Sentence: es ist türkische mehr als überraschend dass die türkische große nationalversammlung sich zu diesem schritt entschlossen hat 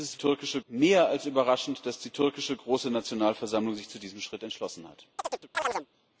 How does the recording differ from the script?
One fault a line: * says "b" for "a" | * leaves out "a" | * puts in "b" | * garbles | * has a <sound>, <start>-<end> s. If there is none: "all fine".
* has a chirp, 5.2-5.9 s